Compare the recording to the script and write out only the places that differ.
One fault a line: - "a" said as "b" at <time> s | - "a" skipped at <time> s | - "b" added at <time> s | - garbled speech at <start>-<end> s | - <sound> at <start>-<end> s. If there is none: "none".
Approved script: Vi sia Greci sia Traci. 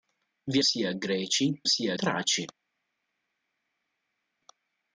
none